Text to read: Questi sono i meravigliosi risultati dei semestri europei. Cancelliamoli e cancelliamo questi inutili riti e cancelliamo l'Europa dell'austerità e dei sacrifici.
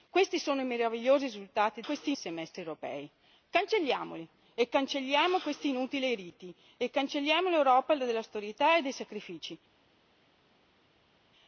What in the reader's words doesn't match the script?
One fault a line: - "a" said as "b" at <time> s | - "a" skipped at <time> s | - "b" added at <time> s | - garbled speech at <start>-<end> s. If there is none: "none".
- "dei" said as "questi" at 1.8 s